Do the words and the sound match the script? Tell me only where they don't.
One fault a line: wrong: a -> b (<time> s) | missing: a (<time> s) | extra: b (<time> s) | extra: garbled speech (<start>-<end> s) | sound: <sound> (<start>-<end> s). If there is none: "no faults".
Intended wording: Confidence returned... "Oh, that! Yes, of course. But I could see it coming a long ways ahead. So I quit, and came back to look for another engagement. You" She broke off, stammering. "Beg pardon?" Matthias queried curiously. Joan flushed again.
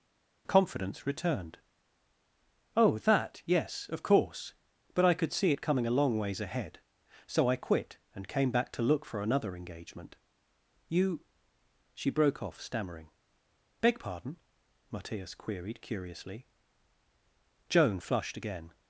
no faults